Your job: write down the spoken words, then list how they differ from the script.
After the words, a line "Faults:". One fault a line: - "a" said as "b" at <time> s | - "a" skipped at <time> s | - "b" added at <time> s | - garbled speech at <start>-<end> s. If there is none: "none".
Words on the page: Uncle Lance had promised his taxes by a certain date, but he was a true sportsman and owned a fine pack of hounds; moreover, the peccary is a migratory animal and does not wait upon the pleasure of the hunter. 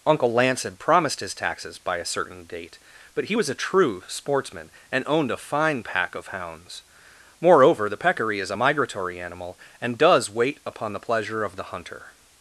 Uncle Lance had promised his taxes by a certain date, but he was a true sportsman and owned a fine pack of hounds; moreover, the peccary is a migratory animal and does wait upon the pleasure of the hunter.
Faults:
- "not" skipped at 10.3 s